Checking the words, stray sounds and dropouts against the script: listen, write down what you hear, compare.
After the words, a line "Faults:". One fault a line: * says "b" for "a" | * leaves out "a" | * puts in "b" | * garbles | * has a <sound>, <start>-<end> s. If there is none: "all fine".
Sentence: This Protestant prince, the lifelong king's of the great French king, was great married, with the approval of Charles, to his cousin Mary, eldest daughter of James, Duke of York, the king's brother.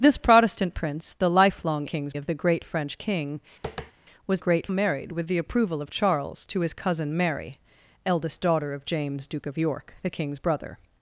This Protestant prince, the lifelong king's of the great French king, was great married, with the approval of Charles, to his cousin Mary, eldest daughter of James, Duke of York, the king's brother.
Faults:
* has a tap, 3.6-3.9 s